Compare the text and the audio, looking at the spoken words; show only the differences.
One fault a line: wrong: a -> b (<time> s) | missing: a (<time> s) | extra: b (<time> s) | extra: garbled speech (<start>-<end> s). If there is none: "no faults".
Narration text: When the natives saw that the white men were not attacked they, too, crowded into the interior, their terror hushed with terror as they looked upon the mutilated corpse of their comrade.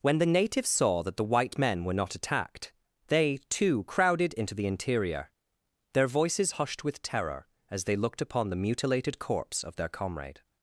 wrong: terror -> voices (6.1 s)